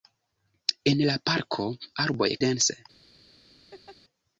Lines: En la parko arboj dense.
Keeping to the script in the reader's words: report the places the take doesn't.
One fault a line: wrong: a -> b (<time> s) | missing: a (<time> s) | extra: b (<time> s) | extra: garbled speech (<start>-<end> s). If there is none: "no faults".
no faults